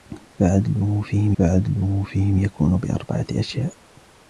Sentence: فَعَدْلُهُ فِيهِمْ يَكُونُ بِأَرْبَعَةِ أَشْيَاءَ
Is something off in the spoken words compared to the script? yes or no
yes